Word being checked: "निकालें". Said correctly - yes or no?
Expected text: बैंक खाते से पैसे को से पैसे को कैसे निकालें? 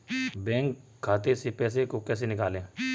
yes